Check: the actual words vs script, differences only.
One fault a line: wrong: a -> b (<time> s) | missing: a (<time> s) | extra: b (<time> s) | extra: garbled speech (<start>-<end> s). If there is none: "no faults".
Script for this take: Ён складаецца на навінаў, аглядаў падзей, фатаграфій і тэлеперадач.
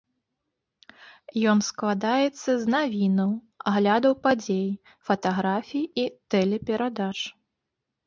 wrong: на -> з (2.6 s)